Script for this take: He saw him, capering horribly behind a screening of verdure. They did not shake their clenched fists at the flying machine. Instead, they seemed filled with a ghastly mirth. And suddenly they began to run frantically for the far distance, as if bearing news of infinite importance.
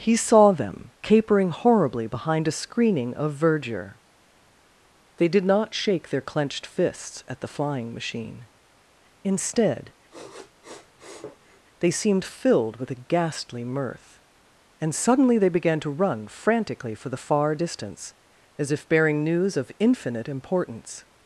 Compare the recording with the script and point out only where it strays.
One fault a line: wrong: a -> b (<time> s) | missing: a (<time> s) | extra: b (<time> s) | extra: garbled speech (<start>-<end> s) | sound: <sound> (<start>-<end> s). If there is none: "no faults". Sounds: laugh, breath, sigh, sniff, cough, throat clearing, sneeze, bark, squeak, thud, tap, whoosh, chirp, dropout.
wrong: him -> them (0.5 s)
sound: sniff (10.1-11.6 s)